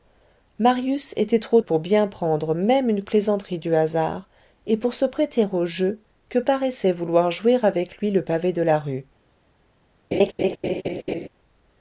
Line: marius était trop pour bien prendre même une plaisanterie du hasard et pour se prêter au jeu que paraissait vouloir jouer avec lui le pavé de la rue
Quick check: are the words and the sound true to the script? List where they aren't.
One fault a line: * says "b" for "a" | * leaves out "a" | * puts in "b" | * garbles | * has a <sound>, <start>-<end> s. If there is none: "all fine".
* has a laugh, 10.1-11.3 s